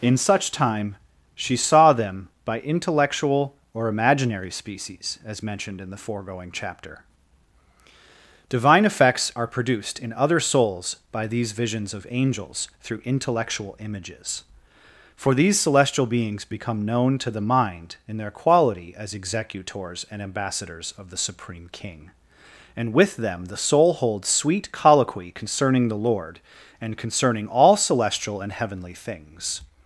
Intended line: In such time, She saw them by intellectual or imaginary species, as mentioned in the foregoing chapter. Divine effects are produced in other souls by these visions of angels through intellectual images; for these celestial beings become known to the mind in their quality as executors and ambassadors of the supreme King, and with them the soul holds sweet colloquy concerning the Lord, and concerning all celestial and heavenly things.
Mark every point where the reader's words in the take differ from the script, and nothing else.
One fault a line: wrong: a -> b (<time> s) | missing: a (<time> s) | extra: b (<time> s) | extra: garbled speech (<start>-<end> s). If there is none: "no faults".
no faults